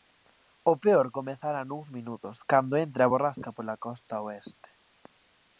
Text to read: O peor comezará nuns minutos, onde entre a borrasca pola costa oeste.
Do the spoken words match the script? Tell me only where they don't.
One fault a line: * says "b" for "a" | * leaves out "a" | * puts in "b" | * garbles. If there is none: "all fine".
* says "cando" for "onde"